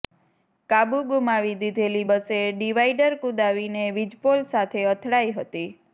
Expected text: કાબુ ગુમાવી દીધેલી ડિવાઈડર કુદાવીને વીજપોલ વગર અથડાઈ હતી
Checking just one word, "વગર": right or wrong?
wrong